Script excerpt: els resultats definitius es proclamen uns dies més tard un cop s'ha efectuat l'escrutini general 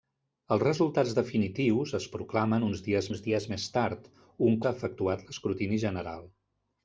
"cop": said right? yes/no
no